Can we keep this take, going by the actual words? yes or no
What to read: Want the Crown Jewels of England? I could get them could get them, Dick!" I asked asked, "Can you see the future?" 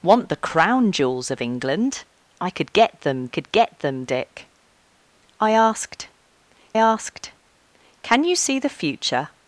yes